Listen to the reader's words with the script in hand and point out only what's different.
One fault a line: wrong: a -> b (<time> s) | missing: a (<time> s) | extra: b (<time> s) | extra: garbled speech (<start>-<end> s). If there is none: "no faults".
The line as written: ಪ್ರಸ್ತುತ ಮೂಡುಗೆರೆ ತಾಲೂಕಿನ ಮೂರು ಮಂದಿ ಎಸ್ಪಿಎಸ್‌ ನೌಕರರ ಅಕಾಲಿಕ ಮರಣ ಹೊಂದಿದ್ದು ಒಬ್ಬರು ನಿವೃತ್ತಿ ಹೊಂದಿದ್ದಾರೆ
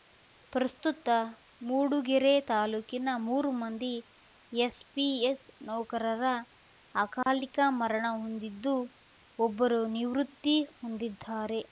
no faults